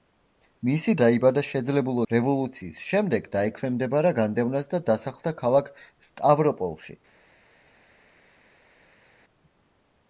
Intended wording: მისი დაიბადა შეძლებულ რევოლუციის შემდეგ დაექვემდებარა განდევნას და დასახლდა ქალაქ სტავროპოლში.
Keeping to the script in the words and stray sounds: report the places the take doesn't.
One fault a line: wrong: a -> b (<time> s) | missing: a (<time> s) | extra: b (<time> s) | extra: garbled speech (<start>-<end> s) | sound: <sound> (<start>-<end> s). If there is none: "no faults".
no faults